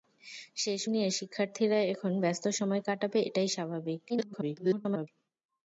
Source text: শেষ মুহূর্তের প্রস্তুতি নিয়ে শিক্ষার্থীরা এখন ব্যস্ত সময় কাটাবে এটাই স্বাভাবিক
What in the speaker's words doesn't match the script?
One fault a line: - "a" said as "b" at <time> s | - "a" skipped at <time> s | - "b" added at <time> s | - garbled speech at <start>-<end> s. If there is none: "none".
- "মুহূর্তের প্রস্তুতি" skipped at 0.8 s
- garbled speech at 4.1-5.1 s